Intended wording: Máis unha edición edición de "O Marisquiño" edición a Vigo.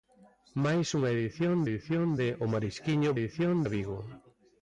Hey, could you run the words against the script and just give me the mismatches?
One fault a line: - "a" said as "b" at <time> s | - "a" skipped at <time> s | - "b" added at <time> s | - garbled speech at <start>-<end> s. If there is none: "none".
none